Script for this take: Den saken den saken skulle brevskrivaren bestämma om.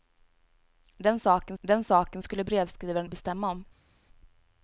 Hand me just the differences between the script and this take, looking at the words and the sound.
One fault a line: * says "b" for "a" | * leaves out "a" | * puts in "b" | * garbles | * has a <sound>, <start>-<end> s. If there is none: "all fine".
all fine